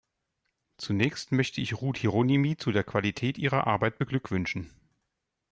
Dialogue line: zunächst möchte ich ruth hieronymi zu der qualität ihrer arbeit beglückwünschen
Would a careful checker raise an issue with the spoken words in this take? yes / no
no